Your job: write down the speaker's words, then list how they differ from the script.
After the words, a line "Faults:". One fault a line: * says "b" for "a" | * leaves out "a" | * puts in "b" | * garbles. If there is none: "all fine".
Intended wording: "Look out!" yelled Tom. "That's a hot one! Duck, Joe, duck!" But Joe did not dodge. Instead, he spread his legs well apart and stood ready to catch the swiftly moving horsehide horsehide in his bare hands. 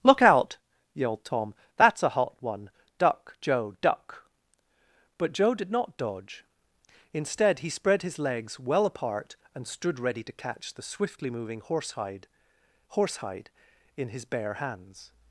"Look out!" yelled Tom. "That's a hot one! Duck, Joe, duck!" But Joe did not dodge. Instead, he spread his legs well apart and stood ready to catch the swiftly moving horsehide horsehide in his bare hands.
Faults:
all fine